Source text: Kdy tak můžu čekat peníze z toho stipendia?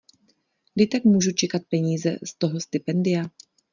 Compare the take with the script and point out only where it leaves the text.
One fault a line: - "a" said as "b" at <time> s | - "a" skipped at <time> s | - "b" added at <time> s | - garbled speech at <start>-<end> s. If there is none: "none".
none